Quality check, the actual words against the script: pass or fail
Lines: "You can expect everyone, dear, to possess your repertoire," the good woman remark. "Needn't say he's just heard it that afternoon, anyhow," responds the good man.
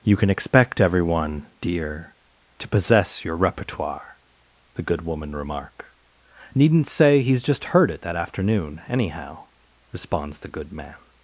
pass